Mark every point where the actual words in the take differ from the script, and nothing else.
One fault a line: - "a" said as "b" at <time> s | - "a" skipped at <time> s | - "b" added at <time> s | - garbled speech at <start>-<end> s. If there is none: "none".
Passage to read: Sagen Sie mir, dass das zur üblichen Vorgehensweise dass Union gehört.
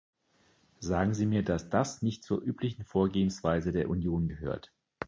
- "nicht" added at 2.0 s
- "dass" said as "der" at 3.7 s